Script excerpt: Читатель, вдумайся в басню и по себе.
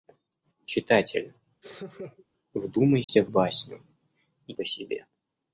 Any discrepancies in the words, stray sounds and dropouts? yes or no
yes